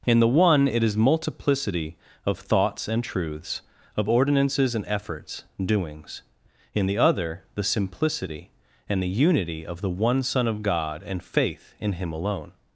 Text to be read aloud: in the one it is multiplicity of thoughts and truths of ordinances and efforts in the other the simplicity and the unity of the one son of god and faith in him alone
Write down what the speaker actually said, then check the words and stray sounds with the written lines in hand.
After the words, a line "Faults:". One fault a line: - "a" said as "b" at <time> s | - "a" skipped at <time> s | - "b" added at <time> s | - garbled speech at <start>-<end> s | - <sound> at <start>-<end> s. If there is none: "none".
in the one it is multiplicity of thoughts and truths of ordinances and efforts doings in the other the simplicity and the unity of the one son of god and faith in him alone
Faults:
- "doings" added at 5.6 s